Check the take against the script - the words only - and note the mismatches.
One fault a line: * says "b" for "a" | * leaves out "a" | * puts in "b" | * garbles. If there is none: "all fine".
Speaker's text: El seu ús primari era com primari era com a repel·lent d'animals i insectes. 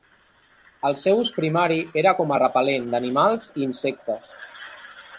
* leaves out "primari era com"